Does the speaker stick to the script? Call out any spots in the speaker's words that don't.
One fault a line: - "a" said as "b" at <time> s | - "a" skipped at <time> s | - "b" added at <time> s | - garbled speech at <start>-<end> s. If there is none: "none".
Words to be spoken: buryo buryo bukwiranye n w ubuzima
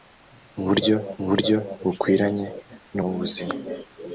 none